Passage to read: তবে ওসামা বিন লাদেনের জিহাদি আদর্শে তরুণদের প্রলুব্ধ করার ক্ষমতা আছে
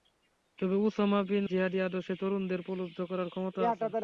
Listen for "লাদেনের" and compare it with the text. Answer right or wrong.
wrong